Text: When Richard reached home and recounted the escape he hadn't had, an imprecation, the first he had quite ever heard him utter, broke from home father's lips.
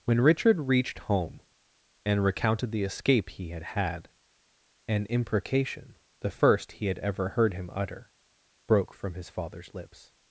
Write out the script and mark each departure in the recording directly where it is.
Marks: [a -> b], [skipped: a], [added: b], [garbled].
When Richard reached home and recounted the escape he [hadn't -> had] had, an imprecation, the first he had [skipped: quite] ever heard him utter, broke from [home -> his] father's lips.